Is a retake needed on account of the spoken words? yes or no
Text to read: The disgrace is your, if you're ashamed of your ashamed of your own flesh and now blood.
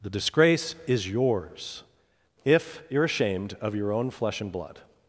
yes